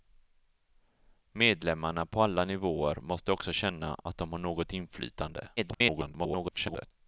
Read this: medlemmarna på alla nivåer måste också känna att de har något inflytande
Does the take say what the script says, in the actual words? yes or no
no